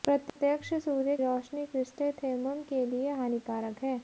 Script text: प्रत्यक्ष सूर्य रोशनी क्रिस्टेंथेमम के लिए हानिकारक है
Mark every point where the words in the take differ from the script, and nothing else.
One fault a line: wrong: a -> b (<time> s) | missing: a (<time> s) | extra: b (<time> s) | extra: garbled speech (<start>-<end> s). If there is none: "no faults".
no faults